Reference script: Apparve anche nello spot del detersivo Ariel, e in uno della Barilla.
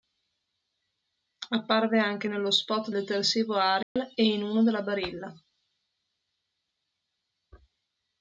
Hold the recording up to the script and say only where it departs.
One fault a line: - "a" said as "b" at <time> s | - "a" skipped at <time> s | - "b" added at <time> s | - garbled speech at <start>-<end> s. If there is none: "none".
- "del" skipped at 2.9 s